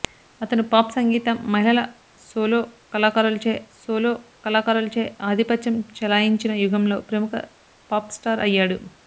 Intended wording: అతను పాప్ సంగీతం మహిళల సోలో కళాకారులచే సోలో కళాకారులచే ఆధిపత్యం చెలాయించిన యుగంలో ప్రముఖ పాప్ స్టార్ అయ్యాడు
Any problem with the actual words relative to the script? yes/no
no